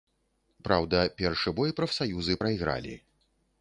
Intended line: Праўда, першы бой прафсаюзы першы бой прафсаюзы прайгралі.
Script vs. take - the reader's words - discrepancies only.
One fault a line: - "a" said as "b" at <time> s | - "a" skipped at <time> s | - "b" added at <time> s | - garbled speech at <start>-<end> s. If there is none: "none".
- "першы бой прафсаюзы" skipped at 2.4 s